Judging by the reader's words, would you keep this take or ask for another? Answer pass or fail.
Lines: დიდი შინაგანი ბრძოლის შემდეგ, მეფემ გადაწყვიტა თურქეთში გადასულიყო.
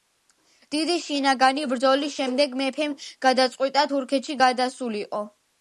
pass